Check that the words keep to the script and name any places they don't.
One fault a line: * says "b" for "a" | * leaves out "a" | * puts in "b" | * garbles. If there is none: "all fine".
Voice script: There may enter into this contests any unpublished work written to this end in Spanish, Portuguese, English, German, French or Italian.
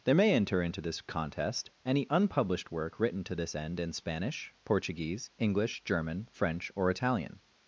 * says "contest" for "contests"